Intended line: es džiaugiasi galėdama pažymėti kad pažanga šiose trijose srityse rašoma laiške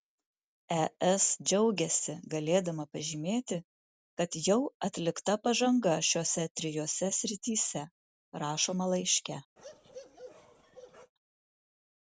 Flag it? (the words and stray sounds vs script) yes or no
yes